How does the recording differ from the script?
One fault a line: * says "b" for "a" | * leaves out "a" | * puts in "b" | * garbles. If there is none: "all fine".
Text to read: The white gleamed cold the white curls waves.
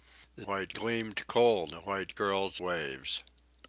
all fine